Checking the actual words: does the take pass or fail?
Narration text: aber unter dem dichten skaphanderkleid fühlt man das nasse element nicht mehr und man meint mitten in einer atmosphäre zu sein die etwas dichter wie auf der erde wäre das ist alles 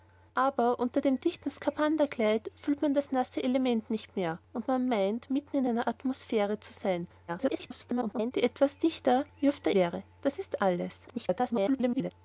fail